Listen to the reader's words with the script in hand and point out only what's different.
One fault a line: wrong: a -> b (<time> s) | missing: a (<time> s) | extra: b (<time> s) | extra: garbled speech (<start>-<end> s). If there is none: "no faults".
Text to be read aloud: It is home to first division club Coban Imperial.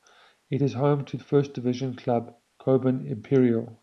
no faults